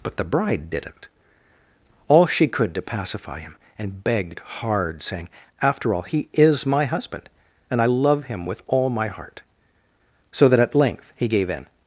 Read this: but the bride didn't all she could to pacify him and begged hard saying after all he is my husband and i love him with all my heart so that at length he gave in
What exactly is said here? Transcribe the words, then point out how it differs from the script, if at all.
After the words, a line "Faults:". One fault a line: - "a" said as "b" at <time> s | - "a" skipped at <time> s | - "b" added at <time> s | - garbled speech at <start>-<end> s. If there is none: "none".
but the bride didn't all she could to pacify him and begged hard saying after all he is my husband and i love him with all my heart so that at length he gave in
Faults:
none